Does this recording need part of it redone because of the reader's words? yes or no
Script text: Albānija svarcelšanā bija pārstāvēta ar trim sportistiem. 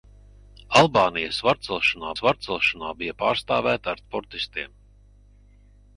yes